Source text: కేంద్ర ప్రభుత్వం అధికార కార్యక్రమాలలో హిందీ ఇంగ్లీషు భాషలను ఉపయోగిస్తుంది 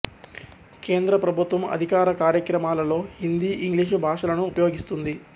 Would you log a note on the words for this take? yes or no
no